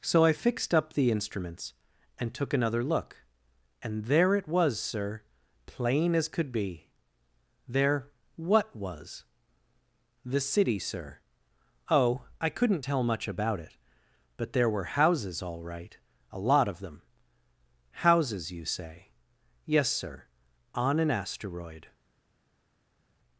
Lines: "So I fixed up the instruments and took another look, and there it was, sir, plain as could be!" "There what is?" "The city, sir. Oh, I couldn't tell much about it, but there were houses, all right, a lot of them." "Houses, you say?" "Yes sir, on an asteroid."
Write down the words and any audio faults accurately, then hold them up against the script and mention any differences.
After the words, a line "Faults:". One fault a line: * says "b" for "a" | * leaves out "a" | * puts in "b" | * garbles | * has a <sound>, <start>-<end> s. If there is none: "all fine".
"So I fixed up the instruments and took another look, and there it was, sir, plain as could be!" "There what was?" "The city, sir. Oh, I couldn't tell much about it, but there were houses, all right, a lot of them." "Houses, you say?" "Yes sir, on an asteroid."
Faults:
* says "was" for "is"